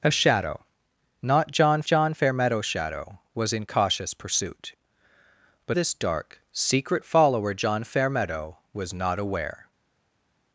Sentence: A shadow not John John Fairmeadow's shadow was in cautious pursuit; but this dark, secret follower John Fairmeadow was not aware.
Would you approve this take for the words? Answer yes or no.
yes